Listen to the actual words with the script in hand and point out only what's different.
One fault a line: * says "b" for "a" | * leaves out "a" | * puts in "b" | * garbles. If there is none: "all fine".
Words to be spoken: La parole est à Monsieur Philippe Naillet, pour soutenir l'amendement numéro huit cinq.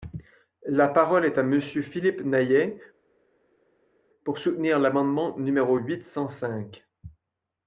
* puts in "cent"